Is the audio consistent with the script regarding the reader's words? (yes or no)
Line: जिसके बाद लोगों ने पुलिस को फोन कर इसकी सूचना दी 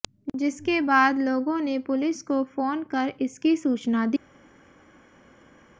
yes